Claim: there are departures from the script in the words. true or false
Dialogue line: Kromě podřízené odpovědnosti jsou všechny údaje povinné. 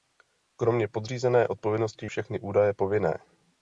true